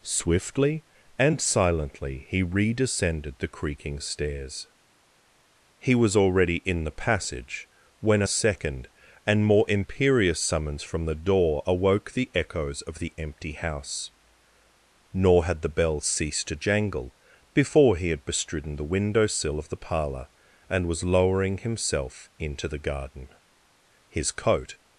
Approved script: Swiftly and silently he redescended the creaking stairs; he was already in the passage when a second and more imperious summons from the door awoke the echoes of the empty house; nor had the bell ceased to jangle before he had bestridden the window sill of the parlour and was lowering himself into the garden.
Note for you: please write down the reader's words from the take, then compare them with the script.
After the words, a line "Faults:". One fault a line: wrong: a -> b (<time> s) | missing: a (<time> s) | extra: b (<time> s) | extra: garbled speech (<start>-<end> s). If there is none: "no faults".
Swiftly and silently he redescended the creaking stairs; he was already in the passage when a second and more imperious summons from the door awoke the echoes of the empty house; nor had the bell ceased to jangle before he had bestridden the window sill of the parlour and was lowering himself into the garden. His coat
Faults:
extra: His coat (24.1 s)